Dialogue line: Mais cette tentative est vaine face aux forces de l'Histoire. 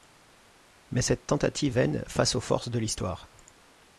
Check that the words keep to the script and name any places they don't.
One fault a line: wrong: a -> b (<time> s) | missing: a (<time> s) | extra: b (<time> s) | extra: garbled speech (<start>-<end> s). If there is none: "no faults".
missing: est (1.8 s)